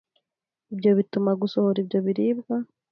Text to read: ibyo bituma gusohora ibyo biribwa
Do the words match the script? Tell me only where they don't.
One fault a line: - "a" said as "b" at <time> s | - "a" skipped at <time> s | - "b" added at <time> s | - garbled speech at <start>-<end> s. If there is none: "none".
none